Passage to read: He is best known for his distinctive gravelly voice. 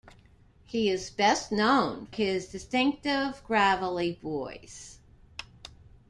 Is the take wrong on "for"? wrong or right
wrong